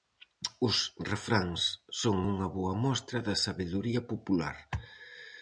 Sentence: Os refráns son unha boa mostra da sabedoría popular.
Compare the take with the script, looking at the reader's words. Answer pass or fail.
pass